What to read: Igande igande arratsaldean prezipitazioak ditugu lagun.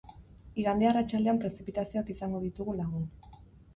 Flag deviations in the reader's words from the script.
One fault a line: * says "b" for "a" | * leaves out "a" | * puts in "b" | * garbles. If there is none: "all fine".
* leaves out "igande"
* puts in "izango"